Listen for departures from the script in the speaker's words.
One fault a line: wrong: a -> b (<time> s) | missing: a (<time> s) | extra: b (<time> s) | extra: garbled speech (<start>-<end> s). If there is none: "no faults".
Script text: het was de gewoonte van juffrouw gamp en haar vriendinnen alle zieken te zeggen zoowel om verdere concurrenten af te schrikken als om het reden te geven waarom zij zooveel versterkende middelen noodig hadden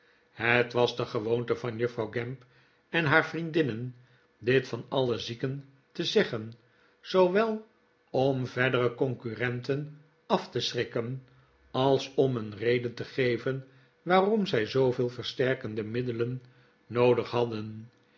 extra: dit van (4.4 s)
wrong: het -> een (12.4 s)